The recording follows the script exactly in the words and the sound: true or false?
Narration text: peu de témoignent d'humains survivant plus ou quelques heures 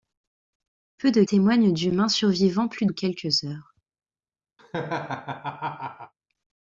false